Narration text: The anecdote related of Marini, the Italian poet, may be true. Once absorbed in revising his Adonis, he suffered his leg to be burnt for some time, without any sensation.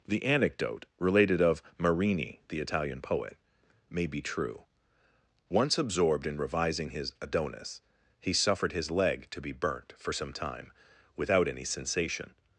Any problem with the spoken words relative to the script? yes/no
no